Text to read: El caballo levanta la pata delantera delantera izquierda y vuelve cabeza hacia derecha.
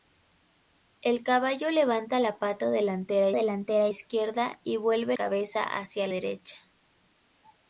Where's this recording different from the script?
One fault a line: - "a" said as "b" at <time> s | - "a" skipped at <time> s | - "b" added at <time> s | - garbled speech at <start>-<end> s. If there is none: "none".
none